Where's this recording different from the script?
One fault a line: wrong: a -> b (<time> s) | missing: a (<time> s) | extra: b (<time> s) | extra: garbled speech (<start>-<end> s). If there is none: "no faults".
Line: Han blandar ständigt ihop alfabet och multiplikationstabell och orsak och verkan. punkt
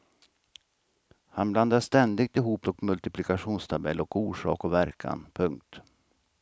missing: alfabet (2.7 s)